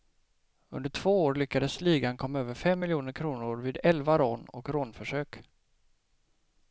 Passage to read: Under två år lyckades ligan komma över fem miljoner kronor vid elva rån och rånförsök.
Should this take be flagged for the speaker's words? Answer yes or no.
no